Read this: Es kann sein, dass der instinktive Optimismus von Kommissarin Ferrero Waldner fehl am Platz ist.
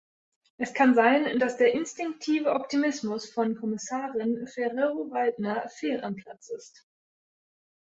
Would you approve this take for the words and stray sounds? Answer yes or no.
yes